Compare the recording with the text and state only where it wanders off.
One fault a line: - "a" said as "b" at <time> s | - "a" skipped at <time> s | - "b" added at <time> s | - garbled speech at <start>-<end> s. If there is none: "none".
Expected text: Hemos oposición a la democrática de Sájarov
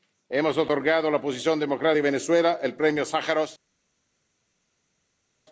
- "oposición" said as "otorgado" at 0.6 s
- "oposición" added at 1.2 s
- "Venezuela el Premio" added at 2.0 s